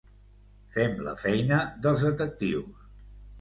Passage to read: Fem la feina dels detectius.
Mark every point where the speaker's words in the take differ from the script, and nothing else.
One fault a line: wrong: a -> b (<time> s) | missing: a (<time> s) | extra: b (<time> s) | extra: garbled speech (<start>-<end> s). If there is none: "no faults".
no faults